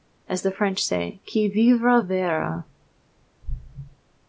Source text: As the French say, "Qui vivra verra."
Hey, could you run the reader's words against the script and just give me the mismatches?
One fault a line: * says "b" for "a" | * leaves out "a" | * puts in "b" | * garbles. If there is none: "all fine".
all fine